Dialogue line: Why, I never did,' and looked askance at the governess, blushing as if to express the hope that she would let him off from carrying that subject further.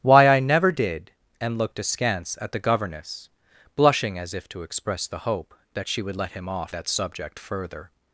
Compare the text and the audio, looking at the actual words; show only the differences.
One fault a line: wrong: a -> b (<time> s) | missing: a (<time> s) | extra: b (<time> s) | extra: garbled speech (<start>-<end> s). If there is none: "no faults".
missing: from carrying (6.7 s)